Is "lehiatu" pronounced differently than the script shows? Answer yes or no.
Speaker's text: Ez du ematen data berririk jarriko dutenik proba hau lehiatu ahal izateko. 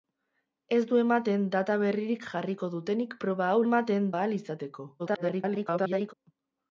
yes